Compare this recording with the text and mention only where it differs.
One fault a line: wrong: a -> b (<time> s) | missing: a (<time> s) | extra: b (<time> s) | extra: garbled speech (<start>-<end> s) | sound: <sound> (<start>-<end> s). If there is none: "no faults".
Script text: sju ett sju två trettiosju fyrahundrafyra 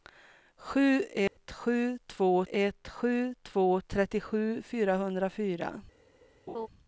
sound: dropout (1.3-1.4 s)
extra: ett sju två (2.5 s)
sound: laugh (6.5-6.7 s)